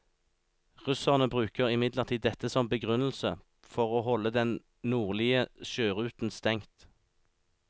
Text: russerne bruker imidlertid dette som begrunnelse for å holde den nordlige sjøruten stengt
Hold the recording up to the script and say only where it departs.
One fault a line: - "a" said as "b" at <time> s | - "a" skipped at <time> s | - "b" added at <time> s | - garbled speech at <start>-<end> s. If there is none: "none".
none